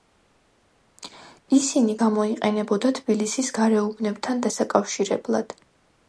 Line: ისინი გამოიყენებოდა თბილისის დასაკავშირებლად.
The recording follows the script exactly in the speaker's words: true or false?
false